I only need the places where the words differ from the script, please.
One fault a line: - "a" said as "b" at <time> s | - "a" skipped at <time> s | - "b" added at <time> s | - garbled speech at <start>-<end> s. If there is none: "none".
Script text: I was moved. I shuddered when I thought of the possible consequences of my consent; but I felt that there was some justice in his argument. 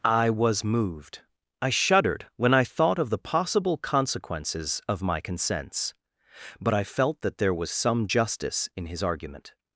- "consent" said as "consents" at 5.2 s